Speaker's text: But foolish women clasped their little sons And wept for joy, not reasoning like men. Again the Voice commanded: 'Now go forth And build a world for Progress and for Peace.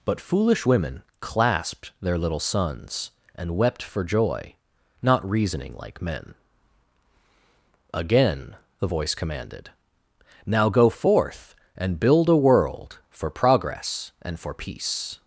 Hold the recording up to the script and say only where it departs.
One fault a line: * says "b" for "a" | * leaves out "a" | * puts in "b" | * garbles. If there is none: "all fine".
all fine